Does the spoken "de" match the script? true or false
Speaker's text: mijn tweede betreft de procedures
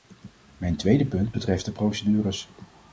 true